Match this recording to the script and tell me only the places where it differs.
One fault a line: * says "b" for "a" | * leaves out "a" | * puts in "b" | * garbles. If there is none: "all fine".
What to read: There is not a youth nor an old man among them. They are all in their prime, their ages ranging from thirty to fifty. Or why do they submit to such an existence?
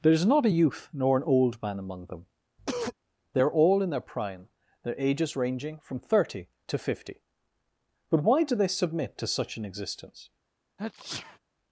* says "But" for "Or"